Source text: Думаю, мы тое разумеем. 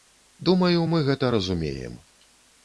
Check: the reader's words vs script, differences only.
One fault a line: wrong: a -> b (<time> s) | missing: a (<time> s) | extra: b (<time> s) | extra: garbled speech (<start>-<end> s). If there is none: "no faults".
wrong: тое -> гэта (1.1 s)